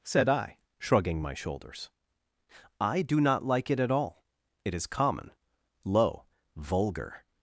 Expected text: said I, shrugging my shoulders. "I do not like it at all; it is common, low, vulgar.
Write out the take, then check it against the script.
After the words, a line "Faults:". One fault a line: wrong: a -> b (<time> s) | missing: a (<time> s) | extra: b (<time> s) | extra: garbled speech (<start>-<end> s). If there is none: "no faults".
said I, shrugging my shoulders. "I do not like it at all; it is common, low, vulgar.
Faults:
no faults